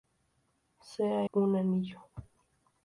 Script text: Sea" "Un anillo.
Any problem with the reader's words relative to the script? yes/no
no